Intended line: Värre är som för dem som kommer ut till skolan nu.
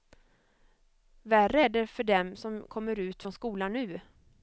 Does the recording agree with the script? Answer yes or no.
no